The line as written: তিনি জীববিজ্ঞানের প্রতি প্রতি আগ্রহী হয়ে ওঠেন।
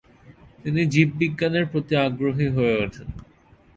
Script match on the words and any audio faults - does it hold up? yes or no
no